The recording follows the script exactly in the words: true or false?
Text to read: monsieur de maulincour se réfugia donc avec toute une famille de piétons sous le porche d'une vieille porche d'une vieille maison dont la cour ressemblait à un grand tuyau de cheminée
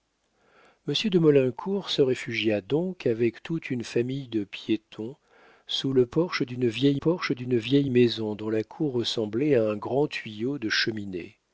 true